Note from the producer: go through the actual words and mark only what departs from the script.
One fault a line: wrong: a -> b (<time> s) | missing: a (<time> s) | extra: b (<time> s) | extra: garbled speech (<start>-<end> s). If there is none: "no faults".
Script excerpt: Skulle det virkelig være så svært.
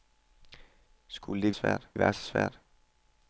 wrong: virkelig -> svært (1.5 s)